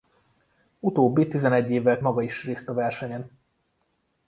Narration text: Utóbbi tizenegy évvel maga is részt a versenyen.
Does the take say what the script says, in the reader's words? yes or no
yes